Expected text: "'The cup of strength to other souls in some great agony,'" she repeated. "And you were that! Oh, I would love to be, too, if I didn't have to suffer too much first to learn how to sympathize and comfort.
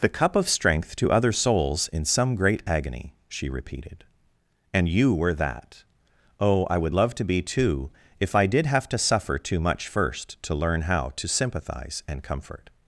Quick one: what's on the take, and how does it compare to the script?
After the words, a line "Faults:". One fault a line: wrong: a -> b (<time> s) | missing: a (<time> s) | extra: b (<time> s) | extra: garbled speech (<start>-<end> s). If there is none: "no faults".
"'The cup of strength to other souls in some great agony,'" she repeated. "And you were that! Oh, I would love to be, too, if I did have to suffer too much first to learn how to sympathize and comfort.
Faults:
wrong: didn't -> did (8.5 s)